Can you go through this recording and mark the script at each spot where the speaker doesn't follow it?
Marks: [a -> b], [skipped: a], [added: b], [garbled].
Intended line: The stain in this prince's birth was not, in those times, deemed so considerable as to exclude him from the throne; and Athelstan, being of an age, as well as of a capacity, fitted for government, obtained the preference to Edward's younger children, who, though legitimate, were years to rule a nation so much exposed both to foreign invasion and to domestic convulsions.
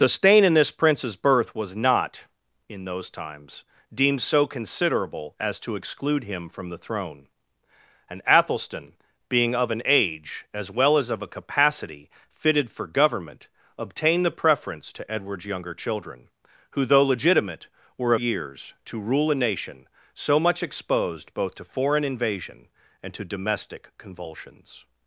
The stain in this prince's birth was not, in those times, deemed so considerable as to exclude him from the throne; and Athelstan, being of an age, as well as of a capacity, fitted for government, obtained the preference to Edward's younger children, who, though legitimate, were years to rule a nation so much exposed both to foreign invasion and to domestic convulsions.